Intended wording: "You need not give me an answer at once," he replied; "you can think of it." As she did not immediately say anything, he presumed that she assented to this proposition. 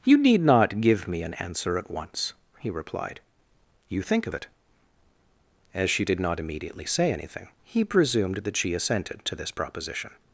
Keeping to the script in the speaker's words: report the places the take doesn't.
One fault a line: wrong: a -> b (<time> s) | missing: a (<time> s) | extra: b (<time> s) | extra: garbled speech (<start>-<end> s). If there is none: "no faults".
missing: can (4.0 s)